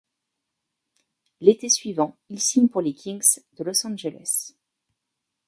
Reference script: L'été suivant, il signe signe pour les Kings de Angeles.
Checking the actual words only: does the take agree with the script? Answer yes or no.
no